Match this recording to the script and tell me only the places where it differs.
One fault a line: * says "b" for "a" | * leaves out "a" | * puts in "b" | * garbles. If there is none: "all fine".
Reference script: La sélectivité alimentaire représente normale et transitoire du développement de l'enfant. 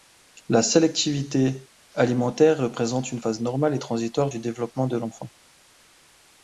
* puts in "une phase"